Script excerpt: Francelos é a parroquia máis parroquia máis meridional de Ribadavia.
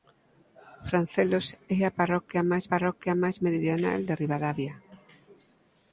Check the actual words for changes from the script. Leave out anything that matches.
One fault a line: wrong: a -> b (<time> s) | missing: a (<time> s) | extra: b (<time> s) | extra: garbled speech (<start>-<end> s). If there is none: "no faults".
no faults